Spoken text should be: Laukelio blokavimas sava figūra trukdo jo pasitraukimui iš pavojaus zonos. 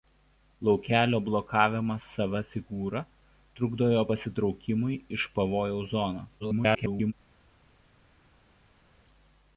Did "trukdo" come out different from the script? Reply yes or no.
no